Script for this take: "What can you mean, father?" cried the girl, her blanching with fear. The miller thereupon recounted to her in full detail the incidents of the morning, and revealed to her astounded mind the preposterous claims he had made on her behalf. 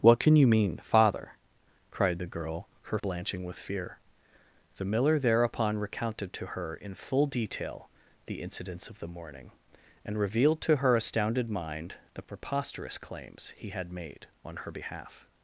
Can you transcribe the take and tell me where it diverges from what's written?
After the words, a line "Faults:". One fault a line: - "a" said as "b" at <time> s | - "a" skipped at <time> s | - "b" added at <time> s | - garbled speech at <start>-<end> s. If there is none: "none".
"What can you mean, father?" cried the girl, her blanching with fear. The miller thereupon recounted to her in full detail the incidents of the morning, and revealed to her astounded mind the preposterous claims he had made on her behalf.
Faults:
none